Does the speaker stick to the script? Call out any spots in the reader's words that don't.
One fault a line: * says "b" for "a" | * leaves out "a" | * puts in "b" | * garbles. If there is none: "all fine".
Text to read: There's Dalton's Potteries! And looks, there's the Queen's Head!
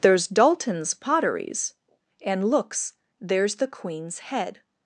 all fine